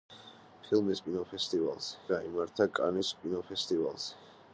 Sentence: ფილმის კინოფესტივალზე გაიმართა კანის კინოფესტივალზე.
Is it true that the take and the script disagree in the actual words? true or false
false